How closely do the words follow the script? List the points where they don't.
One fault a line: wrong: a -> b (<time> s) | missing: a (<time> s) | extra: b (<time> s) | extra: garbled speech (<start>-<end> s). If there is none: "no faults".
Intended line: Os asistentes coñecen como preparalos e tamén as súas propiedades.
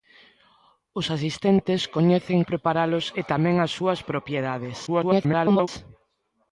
missing: como (2.4 s)
extra: garbled speech (4.9-5.7 s)